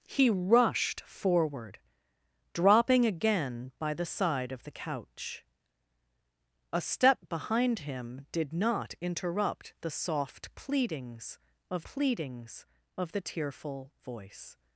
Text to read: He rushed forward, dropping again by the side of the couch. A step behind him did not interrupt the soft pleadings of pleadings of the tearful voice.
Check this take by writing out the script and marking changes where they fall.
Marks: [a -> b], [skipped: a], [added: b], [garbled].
He rushed forward, dropping again by the side of the couch. A step behind him did not interrupt the soft pleadings of pleadings of the tearful voice.